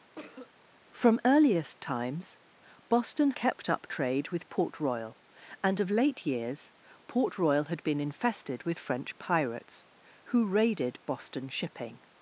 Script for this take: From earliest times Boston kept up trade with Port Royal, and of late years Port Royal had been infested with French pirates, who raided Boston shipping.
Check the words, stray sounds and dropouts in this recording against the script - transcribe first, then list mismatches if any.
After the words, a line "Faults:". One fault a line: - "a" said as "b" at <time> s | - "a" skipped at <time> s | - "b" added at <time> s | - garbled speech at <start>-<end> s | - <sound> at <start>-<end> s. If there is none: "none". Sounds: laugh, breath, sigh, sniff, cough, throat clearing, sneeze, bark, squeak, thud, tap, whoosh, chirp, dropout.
From earliest times Boston kept up trade with Port Royal, and of late years Port Royal had been infested with French pirates, who raided Boston shipping.
Faults:
- cough at 0.1-0.5 s